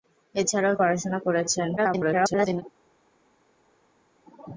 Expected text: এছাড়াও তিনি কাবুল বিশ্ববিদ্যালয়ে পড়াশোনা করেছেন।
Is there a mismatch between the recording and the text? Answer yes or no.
yes